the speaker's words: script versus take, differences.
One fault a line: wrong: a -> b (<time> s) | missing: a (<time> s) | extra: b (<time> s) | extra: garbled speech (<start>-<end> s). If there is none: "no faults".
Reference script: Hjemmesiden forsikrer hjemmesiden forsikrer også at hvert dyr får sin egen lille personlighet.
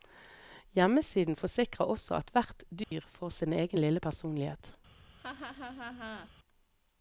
missing: hjemmesiden forsikrer (1.9 s)